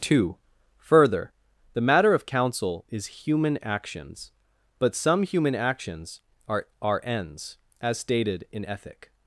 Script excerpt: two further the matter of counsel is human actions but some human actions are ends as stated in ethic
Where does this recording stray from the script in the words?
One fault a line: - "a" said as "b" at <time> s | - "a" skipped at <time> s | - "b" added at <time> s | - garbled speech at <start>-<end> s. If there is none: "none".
- "are" added at 6.8 s